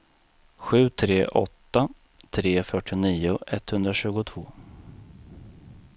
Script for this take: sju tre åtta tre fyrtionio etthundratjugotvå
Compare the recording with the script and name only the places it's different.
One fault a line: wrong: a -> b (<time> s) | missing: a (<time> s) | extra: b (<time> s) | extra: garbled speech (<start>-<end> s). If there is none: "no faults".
no faults